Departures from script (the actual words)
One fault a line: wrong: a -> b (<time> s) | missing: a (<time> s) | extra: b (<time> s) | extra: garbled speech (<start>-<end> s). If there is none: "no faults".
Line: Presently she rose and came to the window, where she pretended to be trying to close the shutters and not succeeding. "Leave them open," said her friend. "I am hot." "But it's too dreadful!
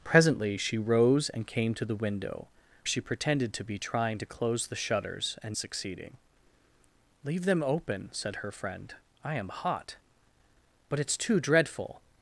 missing: where (2.5 s)
missing: not (5.6 s)